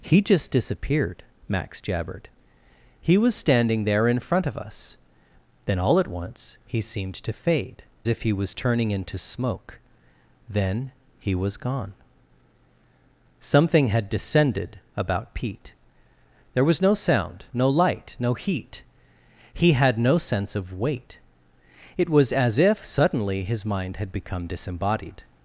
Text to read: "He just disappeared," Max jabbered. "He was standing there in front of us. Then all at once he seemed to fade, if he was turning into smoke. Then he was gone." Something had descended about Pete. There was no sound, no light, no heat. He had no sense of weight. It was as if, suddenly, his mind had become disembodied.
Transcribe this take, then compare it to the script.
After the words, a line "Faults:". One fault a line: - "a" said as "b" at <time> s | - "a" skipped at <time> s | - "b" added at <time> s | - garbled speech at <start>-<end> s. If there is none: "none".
"He just disappeared," Max jabbered. "He was standing there in front of us. Then all at once he seemed to fade, if he was turning into smoke. Then he was gone." Something had descended about Pete. There was no sound, no light, no heat. He had no sense of weight. It was as if, suddenly, his mind had become disembodied.
Faults:
none